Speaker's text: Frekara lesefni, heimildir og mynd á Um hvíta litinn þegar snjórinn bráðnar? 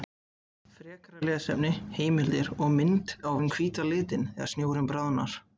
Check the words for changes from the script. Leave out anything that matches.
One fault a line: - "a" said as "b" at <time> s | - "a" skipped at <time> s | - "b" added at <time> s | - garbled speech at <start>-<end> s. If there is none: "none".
none